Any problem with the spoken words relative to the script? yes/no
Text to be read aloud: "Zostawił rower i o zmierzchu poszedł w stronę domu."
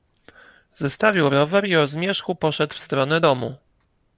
no